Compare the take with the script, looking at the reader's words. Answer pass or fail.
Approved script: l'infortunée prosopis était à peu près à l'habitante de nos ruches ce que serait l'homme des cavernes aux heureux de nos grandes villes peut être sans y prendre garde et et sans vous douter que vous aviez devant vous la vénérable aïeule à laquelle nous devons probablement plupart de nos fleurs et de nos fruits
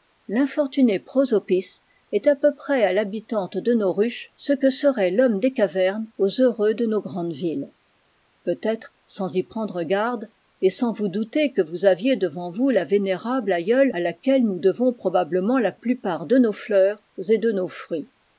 fail